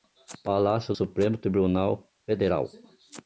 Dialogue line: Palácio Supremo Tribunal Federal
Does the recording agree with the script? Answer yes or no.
yes